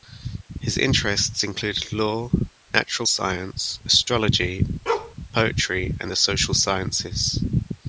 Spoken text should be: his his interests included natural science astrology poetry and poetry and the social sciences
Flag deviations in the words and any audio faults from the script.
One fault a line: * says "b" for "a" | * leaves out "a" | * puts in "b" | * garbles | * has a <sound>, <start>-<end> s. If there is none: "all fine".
* leaves out "his"
* puts in "law"
* has a bark, 4.9-5.2 s
* leaves out "poetry and"